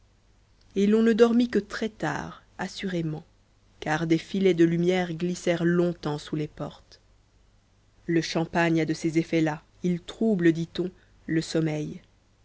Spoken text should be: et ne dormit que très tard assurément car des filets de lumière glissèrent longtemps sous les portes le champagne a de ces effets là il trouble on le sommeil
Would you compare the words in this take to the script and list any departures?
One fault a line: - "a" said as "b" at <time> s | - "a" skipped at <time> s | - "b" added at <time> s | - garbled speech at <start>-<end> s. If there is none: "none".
- "l'on" added at 0.9 s
- "dit" added at 10.5 s